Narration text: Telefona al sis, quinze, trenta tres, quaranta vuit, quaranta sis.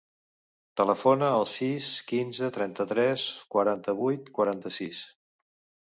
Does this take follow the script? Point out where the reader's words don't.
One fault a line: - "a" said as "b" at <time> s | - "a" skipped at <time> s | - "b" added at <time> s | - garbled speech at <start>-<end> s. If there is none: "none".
none